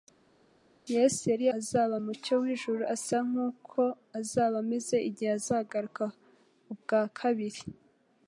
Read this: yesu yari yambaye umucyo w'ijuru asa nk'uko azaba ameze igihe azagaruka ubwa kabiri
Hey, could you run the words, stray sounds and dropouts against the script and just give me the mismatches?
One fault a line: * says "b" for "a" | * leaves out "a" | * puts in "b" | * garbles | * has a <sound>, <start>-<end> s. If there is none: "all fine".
* says "azaba" for "yambaye"